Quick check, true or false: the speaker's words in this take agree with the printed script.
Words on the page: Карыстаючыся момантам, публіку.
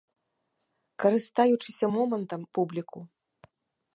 true